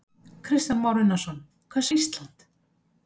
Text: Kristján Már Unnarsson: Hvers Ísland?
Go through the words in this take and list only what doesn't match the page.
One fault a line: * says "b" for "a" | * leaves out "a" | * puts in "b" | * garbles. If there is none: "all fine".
all fine